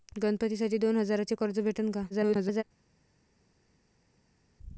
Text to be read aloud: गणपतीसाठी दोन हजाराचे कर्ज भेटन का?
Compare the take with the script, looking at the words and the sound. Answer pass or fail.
fail